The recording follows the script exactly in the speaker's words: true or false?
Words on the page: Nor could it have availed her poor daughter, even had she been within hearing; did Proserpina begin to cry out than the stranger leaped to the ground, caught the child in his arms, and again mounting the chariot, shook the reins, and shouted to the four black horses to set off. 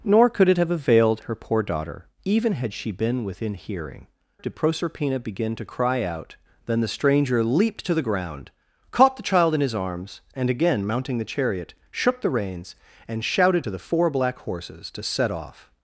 true